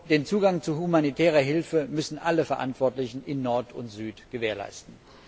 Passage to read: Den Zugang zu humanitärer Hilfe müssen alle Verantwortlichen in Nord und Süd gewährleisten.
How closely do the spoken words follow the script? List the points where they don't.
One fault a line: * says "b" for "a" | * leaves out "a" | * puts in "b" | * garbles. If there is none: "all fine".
all fine